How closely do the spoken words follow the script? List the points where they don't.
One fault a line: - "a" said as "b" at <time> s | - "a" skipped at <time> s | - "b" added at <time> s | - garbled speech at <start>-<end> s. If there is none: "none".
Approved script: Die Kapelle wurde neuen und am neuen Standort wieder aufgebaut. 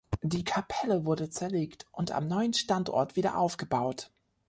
- "neuen" said as "zerlegt" at 1.3 s